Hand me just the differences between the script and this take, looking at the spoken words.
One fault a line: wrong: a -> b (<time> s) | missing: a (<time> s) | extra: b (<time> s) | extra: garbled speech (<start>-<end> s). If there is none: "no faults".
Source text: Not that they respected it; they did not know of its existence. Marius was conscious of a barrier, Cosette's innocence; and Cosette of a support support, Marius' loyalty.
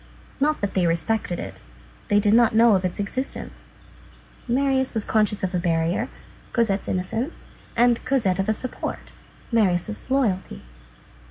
missing: support (9.1 s)